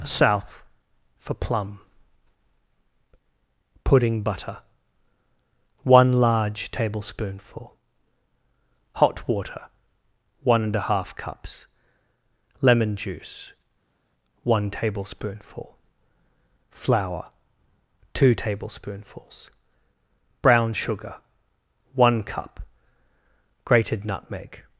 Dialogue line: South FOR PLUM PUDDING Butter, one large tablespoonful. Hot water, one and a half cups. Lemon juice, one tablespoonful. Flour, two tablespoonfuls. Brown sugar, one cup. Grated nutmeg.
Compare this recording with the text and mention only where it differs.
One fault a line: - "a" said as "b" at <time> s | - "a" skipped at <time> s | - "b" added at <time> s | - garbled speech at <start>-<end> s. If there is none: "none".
none